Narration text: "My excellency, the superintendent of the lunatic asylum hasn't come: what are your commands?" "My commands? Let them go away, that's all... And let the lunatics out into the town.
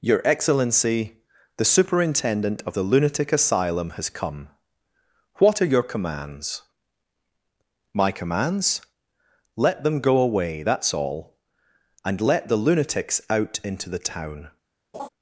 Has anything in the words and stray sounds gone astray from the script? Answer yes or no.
yes